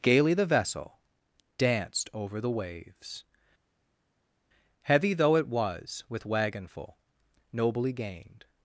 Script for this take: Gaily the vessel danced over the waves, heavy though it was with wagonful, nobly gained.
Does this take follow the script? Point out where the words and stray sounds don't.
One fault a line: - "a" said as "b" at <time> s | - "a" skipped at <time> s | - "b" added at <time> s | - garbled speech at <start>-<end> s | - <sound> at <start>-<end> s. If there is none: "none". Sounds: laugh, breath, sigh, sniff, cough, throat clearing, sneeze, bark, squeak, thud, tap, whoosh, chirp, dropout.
none